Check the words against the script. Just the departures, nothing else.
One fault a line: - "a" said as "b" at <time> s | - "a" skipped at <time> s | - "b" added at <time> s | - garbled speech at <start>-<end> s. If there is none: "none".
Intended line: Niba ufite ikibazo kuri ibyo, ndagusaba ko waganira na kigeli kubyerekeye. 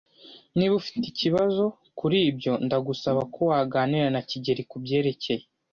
none